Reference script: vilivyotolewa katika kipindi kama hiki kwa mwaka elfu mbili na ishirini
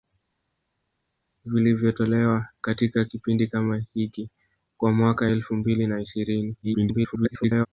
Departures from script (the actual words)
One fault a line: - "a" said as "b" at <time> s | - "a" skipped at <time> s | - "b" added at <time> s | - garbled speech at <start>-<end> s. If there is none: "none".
- garbled speech at 6.6-7.7 s